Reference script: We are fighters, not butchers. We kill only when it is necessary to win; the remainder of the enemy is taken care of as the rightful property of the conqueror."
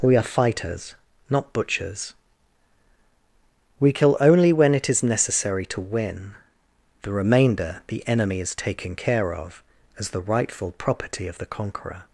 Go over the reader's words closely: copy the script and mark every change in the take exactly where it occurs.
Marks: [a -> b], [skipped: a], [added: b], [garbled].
We are fighters, not butchers. We kill only when it is necessary to win; the remainder [skipped: of] the enemy is taken care of as the rightful property of the conqueror."